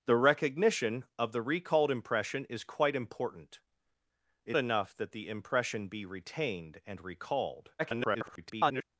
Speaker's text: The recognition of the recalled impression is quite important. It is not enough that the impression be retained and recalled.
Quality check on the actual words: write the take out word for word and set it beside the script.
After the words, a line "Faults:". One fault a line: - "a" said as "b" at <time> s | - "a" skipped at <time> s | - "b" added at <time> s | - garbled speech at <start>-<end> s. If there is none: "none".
The recognition of the recalled impression is quite important. It enough that the impression be retained and recalled. [garbled]
Faults:
- "is not" skipped at 4.6 s
- garbled speech at 7.8-8.8 s